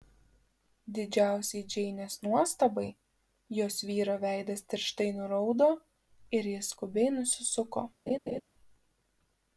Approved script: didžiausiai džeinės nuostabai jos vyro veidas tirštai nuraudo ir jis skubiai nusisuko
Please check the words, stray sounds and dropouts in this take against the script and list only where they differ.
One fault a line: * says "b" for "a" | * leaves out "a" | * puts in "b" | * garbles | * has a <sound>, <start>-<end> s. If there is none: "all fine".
* has a laugh, 8.1-8.4 s